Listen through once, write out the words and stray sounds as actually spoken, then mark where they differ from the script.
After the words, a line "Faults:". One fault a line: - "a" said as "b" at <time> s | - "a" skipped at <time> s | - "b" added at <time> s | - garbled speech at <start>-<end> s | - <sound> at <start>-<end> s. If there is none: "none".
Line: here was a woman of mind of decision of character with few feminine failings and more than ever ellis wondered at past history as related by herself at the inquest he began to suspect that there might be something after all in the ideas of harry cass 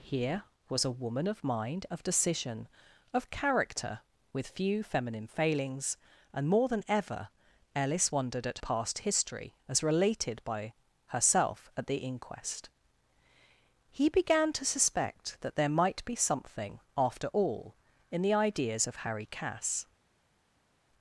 here was a woman of mind of decision of character with few feminine failings and more than ever ellis wondered at past history as related by herself at the inquest he began to suspect that there might be something after all in the ideas of harry cass
Faults:
none